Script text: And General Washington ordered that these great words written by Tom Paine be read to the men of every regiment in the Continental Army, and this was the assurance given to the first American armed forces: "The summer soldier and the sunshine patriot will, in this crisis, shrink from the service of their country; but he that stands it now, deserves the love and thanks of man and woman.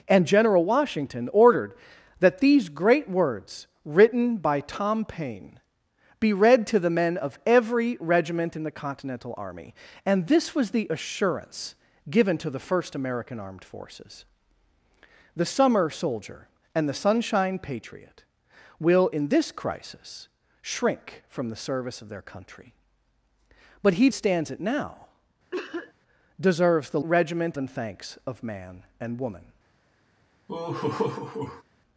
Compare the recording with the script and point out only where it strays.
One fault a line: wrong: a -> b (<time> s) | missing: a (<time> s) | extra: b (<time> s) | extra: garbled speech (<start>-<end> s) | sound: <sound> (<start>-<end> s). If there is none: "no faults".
missing: that (24.1 s)
sound: cough (25.5-25.9 s)
wrong: love -> regiment (27.0 s)
sound: laugh (30.5-31.6 s)